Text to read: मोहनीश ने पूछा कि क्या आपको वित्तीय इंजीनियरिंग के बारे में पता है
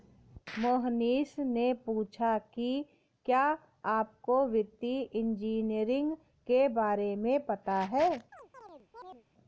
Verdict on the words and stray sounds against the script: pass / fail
fail